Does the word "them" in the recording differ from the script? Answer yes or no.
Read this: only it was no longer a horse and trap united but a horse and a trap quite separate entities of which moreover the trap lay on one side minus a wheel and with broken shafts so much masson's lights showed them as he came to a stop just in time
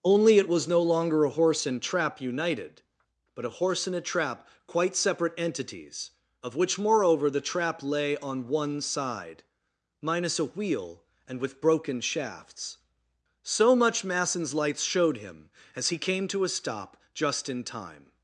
yes